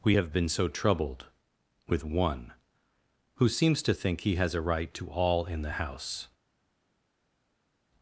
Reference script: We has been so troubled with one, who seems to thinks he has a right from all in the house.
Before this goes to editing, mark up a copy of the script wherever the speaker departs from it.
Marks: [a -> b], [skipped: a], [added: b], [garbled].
We [has -> have] been so troubled with one, who seems to [thinks -> think] he has a right [from -> to] all in the house.